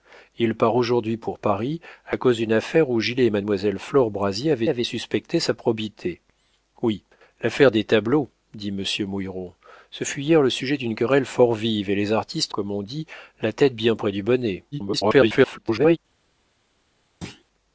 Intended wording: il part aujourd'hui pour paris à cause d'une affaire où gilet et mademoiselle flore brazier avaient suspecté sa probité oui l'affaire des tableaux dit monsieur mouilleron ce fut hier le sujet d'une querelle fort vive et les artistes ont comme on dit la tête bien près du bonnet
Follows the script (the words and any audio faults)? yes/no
no